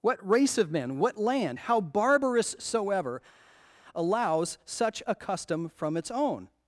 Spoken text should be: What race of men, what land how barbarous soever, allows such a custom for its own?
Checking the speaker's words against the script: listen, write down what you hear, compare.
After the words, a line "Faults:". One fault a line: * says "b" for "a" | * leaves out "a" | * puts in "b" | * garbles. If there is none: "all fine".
What race of men, what land how barbarous soever, allows such a custom from its own?
Faults:
* says "from" for "for"